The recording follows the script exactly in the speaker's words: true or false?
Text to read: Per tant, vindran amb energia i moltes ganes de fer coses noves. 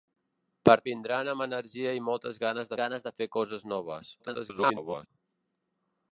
false